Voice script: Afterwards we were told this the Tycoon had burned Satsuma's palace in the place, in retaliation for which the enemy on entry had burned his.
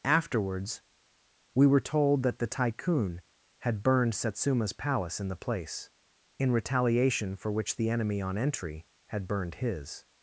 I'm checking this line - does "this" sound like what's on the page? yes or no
no